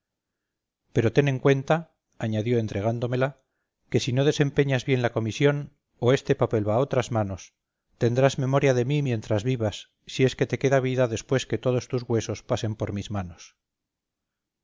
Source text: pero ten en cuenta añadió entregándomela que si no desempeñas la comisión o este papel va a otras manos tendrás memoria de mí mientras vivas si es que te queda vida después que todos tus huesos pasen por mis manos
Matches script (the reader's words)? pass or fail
fail